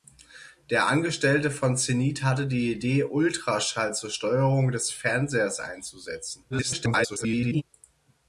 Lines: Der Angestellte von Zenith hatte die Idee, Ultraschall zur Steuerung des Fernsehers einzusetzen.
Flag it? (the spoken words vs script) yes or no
yes